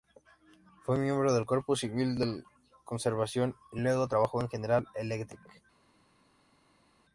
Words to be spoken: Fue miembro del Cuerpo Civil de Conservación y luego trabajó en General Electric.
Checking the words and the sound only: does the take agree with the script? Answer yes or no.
yes